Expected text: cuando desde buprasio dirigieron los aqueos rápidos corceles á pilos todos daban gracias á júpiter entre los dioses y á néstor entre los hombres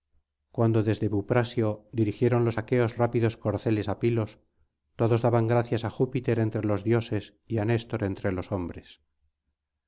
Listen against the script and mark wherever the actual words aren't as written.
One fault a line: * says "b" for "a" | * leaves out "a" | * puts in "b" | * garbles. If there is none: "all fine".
all fine